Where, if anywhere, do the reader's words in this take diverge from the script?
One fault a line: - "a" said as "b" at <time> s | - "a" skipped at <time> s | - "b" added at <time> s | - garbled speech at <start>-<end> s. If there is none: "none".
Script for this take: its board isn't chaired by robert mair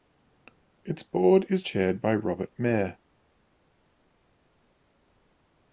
- "isn't" said as "is" at 1.5 s